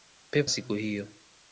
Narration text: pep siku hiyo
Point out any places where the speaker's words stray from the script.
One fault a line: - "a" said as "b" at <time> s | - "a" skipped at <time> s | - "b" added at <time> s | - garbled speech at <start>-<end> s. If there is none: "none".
none